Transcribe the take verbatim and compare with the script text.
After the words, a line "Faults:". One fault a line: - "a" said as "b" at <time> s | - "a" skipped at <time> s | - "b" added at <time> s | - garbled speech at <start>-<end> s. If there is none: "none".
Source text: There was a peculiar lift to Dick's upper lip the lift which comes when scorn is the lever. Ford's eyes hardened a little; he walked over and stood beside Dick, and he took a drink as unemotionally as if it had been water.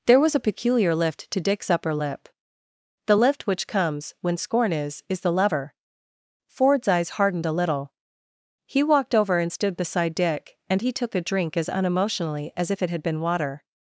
There was a peculiar lift to Dick's upper lip the lift which comes when scorn is is the lever. Ford's eyes hardened a little; he walked over and stood beside Dick, and he took a drink as unemotionally as if it had been water.
Faults:
- "is" added at 5.1 s